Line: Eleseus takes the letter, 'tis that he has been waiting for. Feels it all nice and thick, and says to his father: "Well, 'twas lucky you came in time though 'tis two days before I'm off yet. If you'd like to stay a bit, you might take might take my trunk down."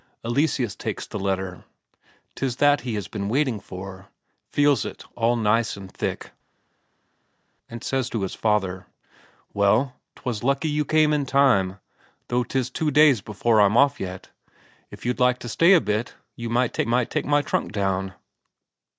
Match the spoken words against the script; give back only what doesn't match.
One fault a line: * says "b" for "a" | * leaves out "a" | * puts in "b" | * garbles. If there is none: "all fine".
all fine